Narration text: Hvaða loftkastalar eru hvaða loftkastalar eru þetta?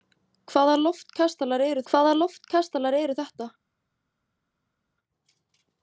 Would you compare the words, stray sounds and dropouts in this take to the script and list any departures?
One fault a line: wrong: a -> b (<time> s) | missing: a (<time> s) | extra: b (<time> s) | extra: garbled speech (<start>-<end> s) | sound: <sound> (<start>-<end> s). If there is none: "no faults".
no faults